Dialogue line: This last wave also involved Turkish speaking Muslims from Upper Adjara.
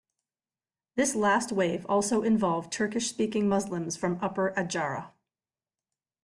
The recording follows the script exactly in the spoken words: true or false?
true